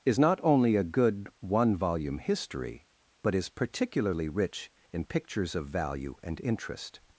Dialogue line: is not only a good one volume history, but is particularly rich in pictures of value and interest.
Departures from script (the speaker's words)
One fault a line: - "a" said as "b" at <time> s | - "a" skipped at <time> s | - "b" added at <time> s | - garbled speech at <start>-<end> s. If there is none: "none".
none